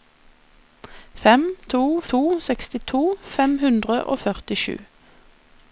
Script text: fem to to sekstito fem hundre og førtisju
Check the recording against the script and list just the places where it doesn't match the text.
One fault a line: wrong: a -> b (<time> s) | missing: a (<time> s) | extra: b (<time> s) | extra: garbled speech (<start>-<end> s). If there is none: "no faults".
no faults